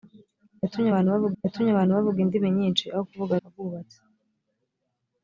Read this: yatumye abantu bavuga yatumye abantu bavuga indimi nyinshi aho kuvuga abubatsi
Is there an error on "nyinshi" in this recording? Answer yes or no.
no